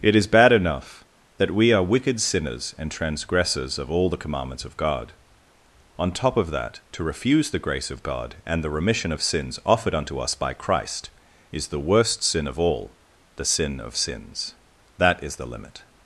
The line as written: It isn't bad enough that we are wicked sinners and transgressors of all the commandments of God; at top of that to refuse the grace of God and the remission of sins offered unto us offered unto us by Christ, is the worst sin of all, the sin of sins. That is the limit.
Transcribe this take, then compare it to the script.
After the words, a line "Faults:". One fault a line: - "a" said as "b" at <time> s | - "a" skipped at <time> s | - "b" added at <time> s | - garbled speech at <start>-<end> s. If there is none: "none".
It is bad enough that we are wicked sinners and transgressors of all the commandments of God; on top of that to refuse the grace of God and the remission of sins offered unto us by Christ, is the worst sin of all, the sin of sins. That is the limit.
Faults:
- "isn't" said as "is" at 0.1 s
- "at" said as "on" at 6.0 s
- "offered unto us" skipped at 10.3 s